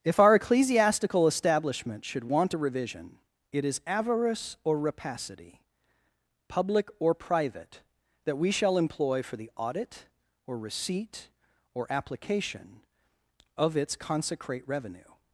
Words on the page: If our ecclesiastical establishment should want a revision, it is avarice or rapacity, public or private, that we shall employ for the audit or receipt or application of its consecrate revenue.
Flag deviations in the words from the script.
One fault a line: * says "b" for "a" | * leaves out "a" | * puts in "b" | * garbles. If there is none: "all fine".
all fine